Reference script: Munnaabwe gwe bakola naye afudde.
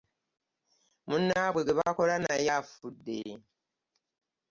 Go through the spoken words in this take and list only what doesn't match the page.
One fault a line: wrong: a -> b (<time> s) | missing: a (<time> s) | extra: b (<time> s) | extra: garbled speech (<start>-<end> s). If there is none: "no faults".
no faults